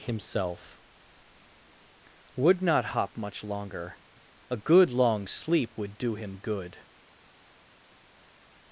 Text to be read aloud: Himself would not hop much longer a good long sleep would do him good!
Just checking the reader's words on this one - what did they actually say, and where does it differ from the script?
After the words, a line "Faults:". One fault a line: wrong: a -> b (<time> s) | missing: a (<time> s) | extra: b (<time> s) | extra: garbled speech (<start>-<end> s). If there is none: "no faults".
Himself would not hop much longer a good long sleep would do him good!
Faults:
no faults